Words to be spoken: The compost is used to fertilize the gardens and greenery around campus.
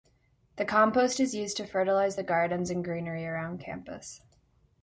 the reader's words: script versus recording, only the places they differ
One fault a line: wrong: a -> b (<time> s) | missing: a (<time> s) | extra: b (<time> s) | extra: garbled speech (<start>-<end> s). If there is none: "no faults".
no faults